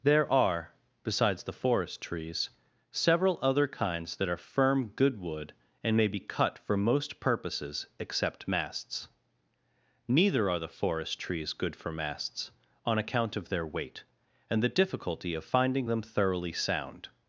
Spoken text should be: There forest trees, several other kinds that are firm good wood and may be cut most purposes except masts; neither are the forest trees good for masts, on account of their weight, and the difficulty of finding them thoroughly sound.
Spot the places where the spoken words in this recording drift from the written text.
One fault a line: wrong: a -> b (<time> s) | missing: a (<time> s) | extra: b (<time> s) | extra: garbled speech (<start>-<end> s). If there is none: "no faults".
extra: are besides the (0.3 s)
extra: for (6.6 s)